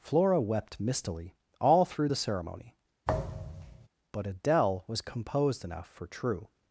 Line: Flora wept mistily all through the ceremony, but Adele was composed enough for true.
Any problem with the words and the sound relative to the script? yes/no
yes